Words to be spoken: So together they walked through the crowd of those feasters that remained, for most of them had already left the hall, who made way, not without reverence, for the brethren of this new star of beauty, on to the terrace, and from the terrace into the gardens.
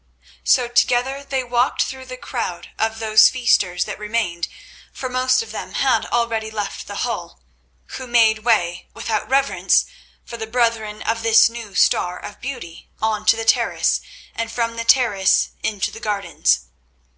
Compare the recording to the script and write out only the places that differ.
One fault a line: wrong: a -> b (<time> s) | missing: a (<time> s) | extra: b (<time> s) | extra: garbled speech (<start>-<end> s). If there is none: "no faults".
missing: not (8.9 s)